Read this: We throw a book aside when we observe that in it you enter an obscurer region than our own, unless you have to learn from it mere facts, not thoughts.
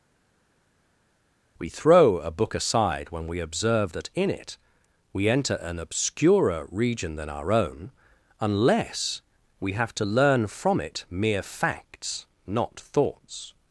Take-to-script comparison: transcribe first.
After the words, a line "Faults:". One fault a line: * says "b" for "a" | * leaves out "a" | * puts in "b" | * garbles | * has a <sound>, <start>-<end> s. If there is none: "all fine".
We throw a book aside when we observe that in it we enter an obscurer region than our own, unless we have to learn from it mere facts, not thoughts.
Faults:
* says "we" for "you"
* says "we" for "you"